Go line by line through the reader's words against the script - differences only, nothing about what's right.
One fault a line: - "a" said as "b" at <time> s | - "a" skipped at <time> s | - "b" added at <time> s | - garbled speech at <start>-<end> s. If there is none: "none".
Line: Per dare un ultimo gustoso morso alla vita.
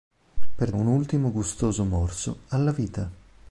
- "dare" skipped at 0.7 s